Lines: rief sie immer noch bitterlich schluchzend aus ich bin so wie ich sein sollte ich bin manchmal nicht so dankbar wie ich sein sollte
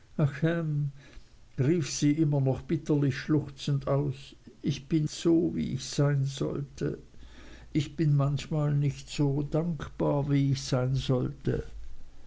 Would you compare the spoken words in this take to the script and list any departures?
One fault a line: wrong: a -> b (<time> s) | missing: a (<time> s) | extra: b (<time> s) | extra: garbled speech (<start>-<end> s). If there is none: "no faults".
no faults